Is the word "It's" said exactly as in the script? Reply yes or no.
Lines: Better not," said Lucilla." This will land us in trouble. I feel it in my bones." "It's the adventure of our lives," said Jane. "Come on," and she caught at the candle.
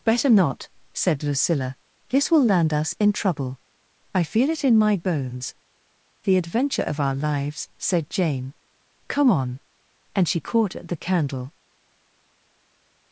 no